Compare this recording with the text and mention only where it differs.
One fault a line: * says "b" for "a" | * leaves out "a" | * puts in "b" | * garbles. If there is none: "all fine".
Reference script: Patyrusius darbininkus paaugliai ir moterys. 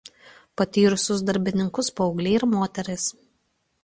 all fine